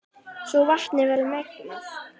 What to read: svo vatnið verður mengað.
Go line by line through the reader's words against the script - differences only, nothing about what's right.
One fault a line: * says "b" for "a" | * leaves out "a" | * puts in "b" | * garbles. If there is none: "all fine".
all fine